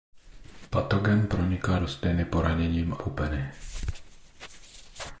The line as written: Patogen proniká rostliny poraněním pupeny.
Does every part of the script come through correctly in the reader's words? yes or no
yes